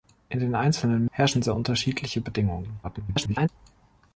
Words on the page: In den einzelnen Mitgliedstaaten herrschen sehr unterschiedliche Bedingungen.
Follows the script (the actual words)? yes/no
no